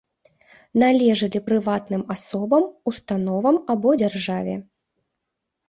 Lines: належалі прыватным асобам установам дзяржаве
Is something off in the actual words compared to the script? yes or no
yes